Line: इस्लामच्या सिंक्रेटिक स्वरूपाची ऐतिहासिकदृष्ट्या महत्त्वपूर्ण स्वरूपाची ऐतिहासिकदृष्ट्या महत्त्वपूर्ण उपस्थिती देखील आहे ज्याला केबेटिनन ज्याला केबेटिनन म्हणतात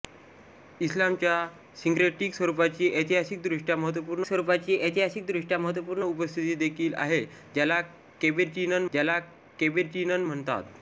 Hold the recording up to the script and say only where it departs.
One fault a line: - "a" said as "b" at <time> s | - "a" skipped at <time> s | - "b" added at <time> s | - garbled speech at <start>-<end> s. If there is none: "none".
none